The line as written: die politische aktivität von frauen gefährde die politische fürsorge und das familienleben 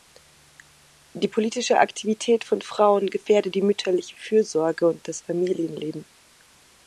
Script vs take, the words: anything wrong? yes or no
yes